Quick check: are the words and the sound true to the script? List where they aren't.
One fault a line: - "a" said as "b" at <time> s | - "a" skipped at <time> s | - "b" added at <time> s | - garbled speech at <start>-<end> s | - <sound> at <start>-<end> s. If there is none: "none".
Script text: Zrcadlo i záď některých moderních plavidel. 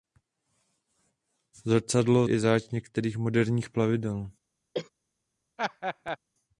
- cough at 4.7-4.9 s
- laugh at 5.6-6.2 s